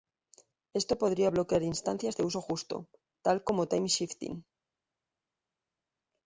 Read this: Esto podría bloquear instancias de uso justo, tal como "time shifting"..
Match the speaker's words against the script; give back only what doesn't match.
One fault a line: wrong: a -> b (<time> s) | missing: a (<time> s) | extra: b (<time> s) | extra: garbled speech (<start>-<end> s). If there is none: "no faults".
no faults